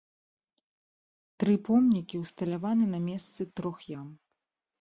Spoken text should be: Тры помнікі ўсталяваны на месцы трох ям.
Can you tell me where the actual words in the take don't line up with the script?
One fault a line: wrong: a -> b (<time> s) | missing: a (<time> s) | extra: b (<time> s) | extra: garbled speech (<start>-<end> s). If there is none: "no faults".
no faults